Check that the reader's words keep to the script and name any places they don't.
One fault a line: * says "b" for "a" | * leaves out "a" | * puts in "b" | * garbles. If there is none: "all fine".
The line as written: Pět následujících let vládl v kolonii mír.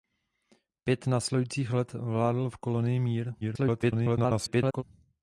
* garbles